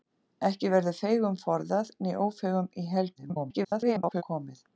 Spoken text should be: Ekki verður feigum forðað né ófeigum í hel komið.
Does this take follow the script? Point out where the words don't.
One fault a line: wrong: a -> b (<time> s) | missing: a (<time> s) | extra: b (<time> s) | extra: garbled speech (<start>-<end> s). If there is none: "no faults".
extra: garbled speech (3.2-4.2 s)